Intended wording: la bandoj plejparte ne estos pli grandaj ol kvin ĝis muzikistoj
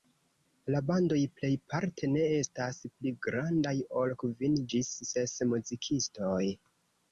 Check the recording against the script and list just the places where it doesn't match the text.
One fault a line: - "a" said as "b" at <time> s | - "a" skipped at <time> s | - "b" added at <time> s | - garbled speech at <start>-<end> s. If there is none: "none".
- "estos" said as "estas" at 2.4 s
- "ses" added at 5.1 s